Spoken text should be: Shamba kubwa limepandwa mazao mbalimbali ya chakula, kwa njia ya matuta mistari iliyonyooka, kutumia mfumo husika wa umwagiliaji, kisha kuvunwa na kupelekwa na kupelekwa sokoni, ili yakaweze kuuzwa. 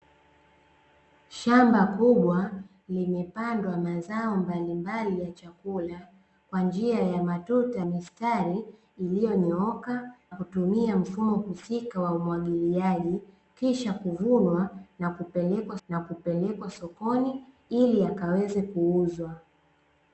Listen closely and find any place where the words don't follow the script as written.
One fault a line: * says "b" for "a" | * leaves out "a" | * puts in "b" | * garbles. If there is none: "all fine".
all fine